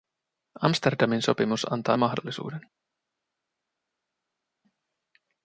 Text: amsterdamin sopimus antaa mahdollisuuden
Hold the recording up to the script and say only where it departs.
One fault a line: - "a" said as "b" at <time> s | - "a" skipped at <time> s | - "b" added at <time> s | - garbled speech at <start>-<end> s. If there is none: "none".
none